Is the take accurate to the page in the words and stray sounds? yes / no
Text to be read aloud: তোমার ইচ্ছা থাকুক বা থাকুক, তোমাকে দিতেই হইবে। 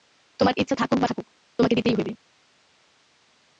yes